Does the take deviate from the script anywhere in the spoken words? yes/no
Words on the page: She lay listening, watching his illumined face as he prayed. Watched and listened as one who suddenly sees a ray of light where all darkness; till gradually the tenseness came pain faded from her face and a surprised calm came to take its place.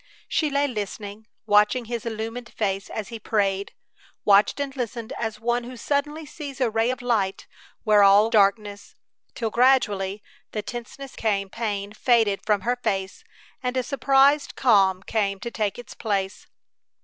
no